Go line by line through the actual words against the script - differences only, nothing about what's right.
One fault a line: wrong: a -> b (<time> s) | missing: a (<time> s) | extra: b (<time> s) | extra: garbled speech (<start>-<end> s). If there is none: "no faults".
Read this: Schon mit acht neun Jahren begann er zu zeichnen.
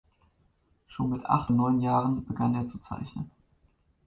no faults